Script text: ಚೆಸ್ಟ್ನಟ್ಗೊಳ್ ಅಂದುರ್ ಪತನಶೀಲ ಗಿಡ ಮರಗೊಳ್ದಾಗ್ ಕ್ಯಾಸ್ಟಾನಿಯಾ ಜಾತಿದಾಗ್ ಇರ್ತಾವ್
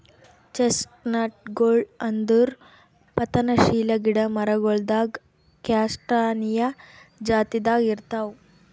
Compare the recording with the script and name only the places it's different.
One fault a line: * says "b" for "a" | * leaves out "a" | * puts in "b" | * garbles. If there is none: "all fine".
all fine